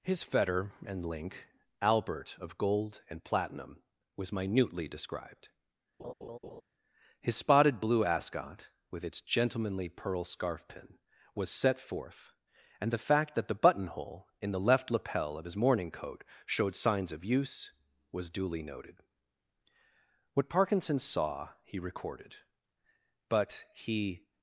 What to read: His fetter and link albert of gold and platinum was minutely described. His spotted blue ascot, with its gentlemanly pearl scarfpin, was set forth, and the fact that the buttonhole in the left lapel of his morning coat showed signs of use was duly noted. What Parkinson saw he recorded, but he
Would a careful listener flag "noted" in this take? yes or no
no